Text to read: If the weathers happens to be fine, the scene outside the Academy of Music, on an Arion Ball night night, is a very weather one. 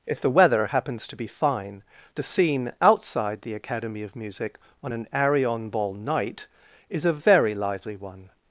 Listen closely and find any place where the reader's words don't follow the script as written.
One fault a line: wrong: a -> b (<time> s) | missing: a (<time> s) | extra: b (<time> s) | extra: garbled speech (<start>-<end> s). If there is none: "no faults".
wrong: weathers -> weather (0.3 s)
missing: night (6.5 s)
wrong: weather -> lively (7.5 s)